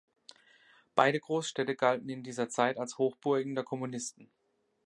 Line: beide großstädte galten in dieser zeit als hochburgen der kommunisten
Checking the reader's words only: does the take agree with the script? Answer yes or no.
yes